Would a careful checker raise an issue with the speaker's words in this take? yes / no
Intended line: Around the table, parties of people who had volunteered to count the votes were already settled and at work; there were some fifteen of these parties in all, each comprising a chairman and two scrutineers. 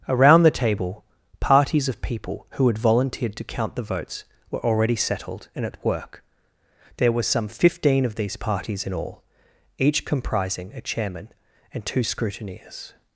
no